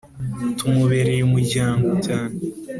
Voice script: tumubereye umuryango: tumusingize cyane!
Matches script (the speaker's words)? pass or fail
fail